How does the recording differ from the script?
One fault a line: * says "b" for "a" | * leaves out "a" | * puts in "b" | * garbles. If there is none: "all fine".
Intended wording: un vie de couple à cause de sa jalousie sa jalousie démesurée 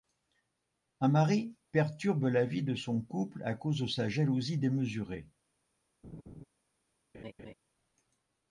* puts in "mari perturbe la"
* puts in "son"
* leaves out "sa jalousie"